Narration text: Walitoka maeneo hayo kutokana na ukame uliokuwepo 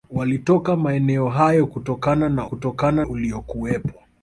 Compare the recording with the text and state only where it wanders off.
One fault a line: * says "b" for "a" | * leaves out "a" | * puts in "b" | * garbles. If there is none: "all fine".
* says "kutokana" for "ukame"